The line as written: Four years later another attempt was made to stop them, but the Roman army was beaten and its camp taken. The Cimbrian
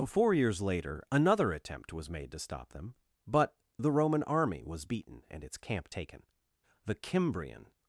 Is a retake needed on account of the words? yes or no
no